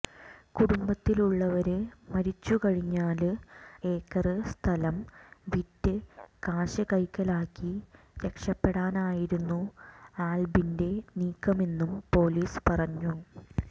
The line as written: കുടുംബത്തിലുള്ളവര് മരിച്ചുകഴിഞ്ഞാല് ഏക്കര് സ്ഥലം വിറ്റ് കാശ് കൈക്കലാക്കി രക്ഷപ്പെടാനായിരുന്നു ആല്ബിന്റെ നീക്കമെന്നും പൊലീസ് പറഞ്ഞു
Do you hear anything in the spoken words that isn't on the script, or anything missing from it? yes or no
no